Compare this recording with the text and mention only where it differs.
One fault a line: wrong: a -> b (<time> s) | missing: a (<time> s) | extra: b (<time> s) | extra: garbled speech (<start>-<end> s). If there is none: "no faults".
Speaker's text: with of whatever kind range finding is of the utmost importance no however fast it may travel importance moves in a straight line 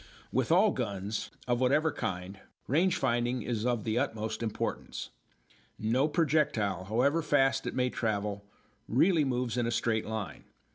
extra: all guns (0.5 s)
extra: projectile (6.1 s)
wrong: importance -> really (8.9 s)